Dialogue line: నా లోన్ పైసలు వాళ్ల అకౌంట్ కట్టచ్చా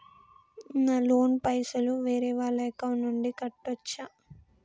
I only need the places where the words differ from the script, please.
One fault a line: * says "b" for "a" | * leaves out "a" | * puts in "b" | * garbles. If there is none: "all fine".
* puts in "వేరే"
* puts in "నుండి"